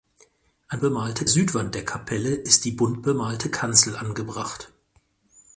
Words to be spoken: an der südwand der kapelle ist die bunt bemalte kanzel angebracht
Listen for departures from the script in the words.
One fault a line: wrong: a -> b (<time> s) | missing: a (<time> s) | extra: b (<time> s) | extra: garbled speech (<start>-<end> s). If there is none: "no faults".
wrong: der -> bemalte (0.8 s)